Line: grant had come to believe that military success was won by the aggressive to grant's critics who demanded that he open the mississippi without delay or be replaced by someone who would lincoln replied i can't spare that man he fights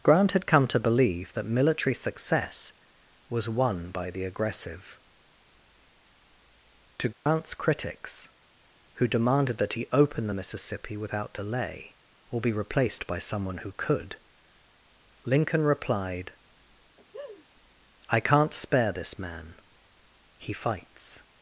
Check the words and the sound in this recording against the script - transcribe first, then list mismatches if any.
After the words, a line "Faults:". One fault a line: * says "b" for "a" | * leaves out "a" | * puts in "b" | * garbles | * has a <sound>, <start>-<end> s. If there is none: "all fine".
grant had come to believe that military success was won by the aggressive to grant's critics who demanded that he open the mississippi without delay or be replaced by someone who could lincoln replied i can't spare this man he fights
Faults:
* has a dropout, 7.1-7.3 s
* says "could" for "would"
* has a laugh, 17.0-17.5 s
* says "this" for "that"